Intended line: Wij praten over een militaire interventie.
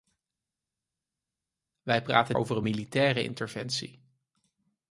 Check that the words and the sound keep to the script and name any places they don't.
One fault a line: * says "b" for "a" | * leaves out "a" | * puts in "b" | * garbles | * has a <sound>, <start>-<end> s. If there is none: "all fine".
all fine